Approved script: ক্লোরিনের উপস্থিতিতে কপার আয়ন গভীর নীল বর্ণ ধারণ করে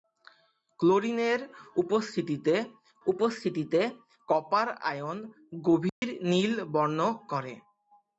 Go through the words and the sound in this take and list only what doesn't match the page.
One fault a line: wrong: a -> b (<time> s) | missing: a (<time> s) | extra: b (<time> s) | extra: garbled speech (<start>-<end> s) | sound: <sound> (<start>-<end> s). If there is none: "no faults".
extra: উপস্থিতিতে (3.1 s)
sound: dropout (5.9-6.0 s)
missing: ধারণ (7.0 s)